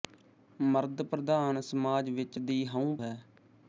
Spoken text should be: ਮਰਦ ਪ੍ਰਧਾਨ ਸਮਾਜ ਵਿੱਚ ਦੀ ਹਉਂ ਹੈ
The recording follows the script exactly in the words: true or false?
true